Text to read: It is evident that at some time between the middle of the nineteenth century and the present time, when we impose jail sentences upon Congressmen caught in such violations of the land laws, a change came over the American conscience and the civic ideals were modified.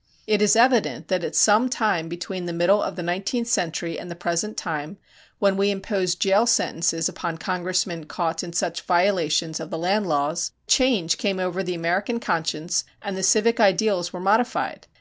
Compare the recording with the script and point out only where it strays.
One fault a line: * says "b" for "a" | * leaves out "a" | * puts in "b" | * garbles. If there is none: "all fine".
* leaves out "a"